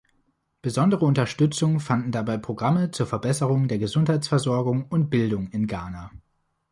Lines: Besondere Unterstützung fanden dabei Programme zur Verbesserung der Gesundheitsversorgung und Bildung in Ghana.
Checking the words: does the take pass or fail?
pass